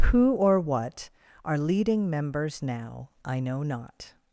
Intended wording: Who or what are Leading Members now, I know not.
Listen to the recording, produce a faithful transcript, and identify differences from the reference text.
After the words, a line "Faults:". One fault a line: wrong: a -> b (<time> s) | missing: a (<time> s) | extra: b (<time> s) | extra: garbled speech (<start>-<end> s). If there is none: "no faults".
Who or what are Leading Members now, I know not.
Faults:
no faults